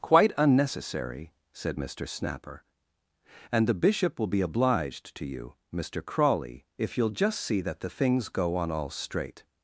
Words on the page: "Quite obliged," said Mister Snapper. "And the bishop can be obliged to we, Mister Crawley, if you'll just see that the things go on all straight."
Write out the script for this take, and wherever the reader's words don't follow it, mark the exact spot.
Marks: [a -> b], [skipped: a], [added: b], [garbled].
"Quite [obliged," -> unnecessary] said Mister Snapper. "And the bishop [can -> will] be obliged to [we, -> you] Mister Crawley, if you'll just see that the things go on all straight."